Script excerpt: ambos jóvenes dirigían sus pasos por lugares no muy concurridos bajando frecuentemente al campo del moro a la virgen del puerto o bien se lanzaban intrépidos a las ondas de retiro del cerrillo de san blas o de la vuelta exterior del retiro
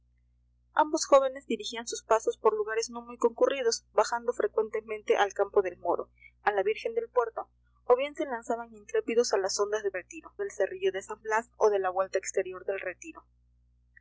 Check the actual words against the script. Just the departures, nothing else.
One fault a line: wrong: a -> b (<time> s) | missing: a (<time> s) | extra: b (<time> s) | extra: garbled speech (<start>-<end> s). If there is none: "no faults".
no faults